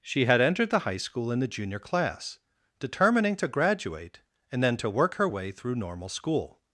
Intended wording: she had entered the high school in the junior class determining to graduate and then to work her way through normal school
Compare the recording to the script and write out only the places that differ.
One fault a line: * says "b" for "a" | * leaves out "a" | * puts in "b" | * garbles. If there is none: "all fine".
all fine